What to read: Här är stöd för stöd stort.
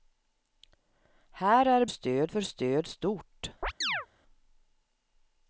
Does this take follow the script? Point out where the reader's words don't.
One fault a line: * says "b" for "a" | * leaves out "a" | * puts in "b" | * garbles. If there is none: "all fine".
all fine